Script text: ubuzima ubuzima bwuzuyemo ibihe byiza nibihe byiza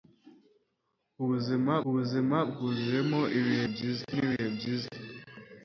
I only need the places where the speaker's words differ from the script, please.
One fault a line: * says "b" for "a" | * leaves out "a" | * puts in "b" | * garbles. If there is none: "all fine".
all fine